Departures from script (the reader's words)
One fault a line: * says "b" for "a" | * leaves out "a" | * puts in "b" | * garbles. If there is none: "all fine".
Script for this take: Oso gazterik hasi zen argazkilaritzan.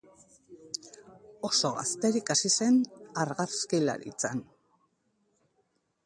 all fine